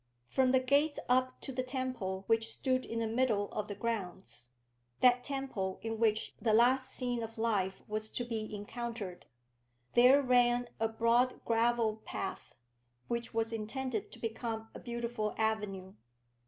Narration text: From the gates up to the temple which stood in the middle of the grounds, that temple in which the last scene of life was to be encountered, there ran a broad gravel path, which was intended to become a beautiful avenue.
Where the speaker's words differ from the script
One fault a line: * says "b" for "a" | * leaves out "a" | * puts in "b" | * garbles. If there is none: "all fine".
all fine